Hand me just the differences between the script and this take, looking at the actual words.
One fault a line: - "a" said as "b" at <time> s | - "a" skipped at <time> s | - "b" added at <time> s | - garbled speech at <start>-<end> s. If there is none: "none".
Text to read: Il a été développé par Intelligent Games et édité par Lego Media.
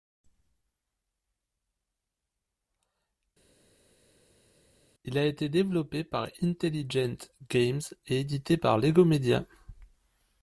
none